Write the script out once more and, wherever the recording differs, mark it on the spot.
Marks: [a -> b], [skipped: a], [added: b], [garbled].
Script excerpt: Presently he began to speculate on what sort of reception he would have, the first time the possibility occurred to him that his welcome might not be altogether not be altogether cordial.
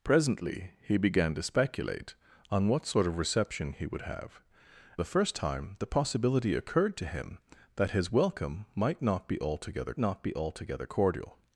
Presently he began to speculate on what sort of reception he would have, the first time the possibility occurred to him that his welcome might not be altogether not be altogether cordial.